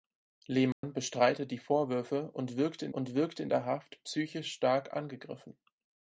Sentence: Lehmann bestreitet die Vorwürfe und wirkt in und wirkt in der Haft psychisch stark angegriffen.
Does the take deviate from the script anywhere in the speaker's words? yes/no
no